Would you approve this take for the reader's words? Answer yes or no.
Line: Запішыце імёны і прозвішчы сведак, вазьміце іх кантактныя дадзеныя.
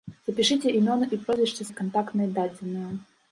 no